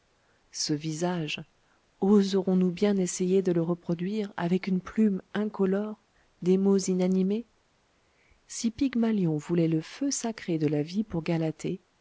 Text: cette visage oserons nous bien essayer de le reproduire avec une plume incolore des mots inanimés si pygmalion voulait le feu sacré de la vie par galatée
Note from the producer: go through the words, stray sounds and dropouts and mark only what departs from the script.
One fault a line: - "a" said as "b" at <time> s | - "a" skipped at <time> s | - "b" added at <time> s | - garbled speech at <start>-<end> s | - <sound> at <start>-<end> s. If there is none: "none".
- "cette" said as "ce" at 0.5 s
- "par" said as "pour" at 11.0 s